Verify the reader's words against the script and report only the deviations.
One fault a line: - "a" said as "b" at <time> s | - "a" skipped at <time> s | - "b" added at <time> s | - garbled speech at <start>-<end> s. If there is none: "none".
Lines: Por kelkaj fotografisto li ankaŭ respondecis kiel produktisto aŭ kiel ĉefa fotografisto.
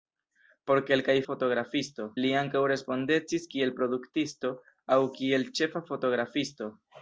none